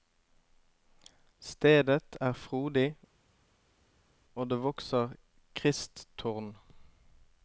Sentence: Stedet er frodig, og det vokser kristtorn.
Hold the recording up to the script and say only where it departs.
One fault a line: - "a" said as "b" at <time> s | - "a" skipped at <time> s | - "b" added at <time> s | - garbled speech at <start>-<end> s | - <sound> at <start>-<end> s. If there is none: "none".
none